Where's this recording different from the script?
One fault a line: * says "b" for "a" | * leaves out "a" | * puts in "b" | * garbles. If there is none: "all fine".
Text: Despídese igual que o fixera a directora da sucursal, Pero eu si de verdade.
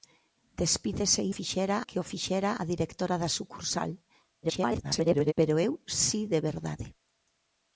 * says "fixera" for "igual"
* garbles